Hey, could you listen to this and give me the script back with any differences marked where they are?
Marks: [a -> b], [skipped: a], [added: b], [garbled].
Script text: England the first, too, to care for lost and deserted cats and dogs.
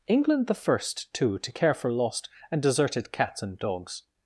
England the first, too, to care for lost and deserted cats and dogs.